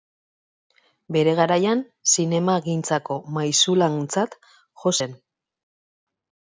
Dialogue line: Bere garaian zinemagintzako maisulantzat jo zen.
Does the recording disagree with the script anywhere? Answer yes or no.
no